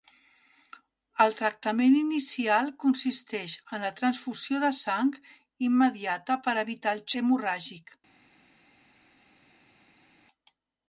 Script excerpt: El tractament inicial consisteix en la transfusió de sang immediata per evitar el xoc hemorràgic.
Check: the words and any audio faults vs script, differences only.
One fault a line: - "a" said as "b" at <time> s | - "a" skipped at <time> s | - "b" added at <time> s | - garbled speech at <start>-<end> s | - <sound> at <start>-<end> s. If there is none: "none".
- "xoc" skipped at 7.1 s